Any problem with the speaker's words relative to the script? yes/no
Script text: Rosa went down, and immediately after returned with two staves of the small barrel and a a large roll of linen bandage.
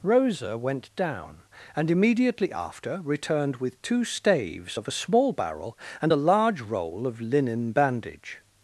yes